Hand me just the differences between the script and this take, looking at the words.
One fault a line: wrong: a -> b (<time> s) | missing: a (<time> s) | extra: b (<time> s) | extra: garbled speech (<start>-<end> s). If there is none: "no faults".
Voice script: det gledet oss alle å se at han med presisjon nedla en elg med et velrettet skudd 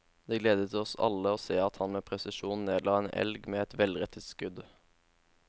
no faults